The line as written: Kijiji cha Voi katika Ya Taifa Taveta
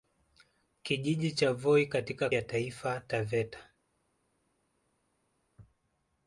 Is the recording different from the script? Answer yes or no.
no